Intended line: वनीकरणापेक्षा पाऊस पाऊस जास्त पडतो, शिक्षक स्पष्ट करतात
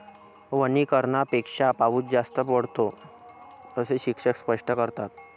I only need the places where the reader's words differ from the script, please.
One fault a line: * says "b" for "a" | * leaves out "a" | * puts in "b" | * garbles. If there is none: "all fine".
* leaves out "पाऊस"
* puts in "असे"